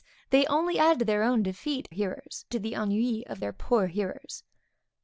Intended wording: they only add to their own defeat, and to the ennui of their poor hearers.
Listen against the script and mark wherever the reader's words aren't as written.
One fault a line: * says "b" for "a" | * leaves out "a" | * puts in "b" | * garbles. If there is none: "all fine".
* says "hearers" for "and"